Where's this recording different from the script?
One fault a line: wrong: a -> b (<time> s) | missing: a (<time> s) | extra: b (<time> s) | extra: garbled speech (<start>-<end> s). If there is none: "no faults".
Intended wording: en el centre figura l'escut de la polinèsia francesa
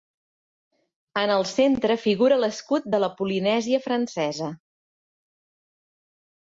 no faults